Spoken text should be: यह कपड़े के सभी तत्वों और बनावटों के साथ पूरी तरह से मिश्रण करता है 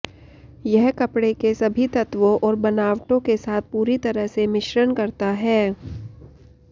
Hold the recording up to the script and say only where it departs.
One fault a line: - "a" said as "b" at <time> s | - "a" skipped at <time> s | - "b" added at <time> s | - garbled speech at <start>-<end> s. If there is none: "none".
none